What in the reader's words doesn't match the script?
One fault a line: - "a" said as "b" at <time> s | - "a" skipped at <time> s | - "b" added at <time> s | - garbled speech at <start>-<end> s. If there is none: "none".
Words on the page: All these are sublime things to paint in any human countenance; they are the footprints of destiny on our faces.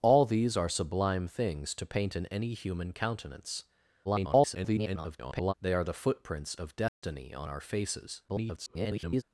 - garbled speech at 4.0-5.5 s
- garbled speech at 8.3-9.2 s